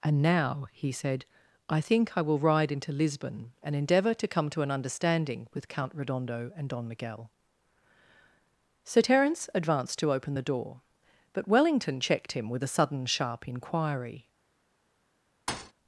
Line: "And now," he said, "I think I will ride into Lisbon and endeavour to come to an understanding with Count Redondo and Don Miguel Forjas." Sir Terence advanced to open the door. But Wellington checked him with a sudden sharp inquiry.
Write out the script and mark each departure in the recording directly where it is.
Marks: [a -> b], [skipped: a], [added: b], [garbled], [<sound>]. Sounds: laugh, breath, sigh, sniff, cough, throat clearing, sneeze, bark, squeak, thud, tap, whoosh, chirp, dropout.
"And now," he said, "I think I will ride into Lisbon and endeavour to come to an understanding with Count Redondo and Don Miguel [skipped: Forjas."] Sir Terence advanced to open the door. But Wellington checked him with a sudden sharp inquiry. [thud]